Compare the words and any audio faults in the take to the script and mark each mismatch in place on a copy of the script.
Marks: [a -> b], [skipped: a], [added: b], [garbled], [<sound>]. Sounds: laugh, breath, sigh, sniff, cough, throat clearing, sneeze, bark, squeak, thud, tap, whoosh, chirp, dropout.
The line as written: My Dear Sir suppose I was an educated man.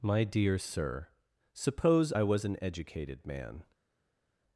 My Dear Sir suppose I was an educated man.